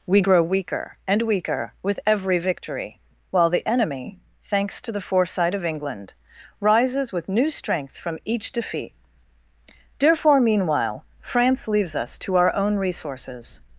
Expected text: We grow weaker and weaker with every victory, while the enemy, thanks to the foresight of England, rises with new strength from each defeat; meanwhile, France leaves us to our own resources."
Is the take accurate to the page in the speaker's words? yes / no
no